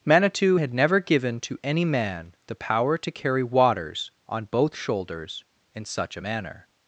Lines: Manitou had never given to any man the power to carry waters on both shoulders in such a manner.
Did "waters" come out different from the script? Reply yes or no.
no